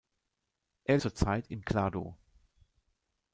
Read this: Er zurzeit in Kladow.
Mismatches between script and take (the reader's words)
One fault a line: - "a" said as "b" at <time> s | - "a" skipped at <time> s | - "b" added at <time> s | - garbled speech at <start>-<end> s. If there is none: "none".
none